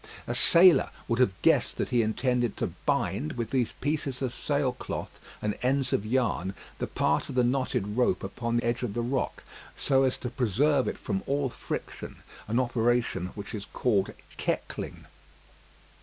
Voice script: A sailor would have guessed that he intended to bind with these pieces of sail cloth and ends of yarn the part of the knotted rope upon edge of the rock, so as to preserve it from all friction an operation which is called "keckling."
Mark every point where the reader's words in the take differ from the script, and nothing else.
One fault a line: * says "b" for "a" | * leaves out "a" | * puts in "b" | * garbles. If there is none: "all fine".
all fine